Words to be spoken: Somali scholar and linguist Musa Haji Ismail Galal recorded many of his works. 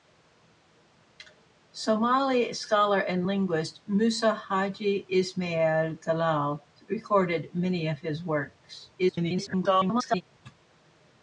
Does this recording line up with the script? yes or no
no